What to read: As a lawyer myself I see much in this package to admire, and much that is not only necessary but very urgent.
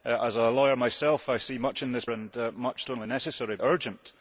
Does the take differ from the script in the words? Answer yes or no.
yes